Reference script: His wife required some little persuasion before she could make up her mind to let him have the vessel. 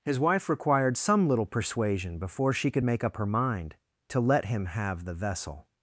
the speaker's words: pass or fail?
pass